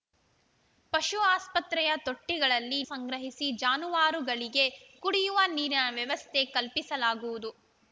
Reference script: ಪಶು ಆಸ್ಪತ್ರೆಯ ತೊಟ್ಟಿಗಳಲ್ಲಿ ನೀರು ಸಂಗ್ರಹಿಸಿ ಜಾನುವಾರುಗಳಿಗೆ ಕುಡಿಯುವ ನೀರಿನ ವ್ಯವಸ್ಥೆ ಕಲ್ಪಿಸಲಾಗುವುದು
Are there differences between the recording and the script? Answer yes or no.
yes